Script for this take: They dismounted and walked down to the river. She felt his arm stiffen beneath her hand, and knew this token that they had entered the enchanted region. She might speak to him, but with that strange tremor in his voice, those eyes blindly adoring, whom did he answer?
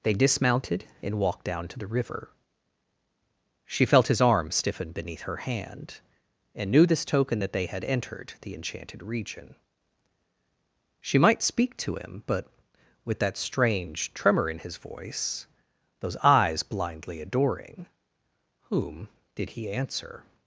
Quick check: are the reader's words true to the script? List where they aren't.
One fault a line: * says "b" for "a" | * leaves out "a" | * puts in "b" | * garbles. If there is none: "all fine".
all fine